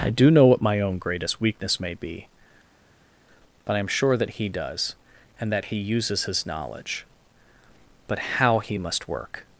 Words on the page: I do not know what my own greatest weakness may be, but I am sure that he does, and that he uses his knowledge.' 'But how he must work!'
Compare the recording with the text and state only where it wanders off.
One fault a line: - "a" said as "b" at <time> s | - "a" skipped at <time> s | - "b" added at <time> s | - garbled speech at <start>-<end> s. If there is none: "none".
- "not" skipped at 0.3 s